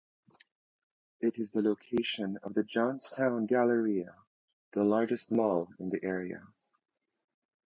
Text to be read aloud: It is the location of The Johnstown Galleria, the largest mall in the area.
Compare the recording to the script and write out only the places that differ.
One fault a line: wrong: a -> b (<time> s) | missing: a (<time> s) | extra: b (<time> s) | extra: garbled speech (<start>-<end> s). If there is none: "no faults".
no faults